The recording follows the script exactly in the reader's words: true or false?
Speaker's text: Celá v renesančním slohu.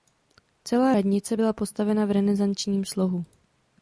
false